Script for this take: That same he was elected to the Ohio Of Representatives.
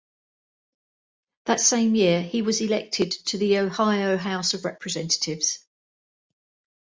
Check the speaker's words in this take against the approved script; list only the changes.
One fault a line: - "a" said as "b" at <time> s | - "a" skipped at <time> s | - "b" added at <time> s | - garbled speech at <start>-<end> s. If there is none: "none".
- "year" added at 1.9 s
- "House" added at 4.2 s